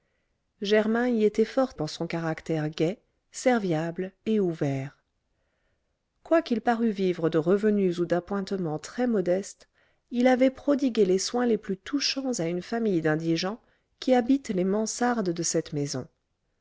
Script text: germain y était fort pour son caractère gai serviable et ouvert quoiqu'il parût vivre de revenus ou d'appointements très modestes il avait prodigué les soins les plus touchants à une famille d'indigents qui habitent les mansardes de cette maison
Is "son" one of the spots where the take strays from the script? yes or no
no